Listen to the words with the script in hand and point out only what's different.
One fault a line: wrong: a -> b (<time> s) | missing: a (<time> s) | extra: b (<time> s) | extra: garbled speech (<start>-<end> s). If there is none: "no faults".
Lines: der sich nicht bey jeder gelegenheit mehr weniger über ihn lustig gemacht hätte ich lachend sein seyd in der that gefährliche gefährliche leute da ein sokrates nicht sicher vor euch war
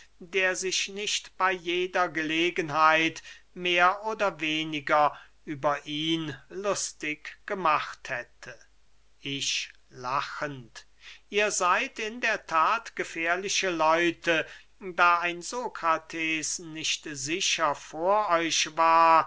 extra: oder (4.0 s)
wrong: sein -> ihr (11.3 s)
missing: gefährliche (13.7 s)